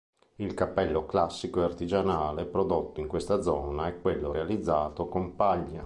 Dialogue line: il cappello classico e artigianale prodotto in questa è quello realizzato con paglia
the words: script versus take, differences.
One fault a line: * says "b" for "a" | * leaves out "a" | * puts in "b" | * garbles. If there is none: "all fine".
* puts in "zona"